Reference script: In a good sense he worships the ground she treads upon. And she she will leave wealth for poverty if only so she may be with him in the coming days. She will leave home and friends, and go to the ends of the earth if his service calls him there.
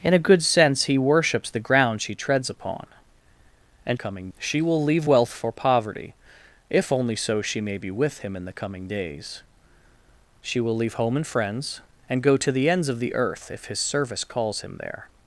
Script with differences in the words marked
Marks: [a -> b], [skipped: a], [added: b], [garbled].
In a good sense he worships the ground she treads upon. And [she -> coming] she will leave wealth for poverty if only so she may be with him in the coming days. She will leave home and friends, and go to the ends of the earth if his service calls him there.